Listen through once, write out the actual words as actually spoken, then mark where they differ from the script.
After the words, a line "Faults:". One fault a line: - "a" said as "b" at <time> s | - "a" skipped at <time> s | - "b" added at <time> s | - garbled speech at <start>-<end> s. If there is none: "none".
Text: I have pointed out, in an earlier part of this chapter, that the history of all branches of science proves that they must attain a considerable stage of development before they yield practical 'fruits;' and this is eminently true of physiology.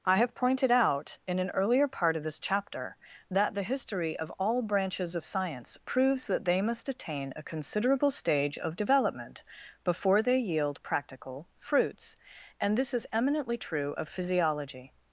I have pointed out, in an earlier part of this chapter, that the history of all branches of science proves that they must attain a considerable stage of development before they yield practical 'fruits;' and this is eminently true of physiology.
Faults:
none